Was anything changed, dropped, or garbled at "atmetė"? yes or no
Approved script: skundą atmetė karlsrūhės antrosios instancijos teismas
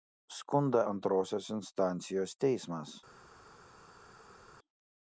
yes